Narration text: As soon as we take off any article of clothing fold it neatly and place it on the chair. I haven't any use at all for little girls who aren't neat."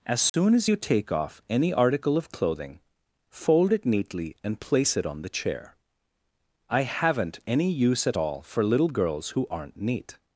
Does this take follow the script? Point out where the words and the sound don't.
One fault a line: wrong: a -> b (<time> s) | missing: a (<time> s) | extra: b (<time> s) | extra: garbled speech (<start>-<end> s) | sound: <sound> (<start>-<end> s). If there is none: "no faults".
sound: dropout (0.3-0.3 s)
wrong: we -> you (0.6 s)